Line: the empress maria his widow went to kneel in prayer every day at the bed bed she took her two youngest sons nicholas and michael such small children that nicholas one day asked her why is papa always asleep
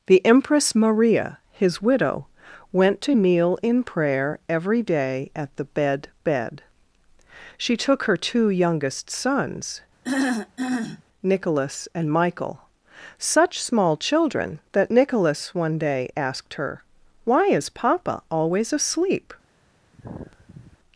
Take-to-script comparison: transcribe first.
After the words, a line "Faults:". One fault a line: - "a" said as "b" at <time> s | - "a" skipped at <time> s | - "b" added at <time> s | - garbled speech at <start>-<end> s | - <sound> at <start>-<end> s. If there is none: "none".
the empress maria his widow went to kneel in prayer every day at the bed bed she took her two youngest sons nicholas and michael such small children that nicholas one day asked her why is papa always asleep
Faults:
- throat clearing at 10.0-11.0 s
- sigh at 19.9-20.8 s